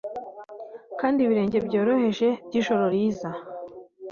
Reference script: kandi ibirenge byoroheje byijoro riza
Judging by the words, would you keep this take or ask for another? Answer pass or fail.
pass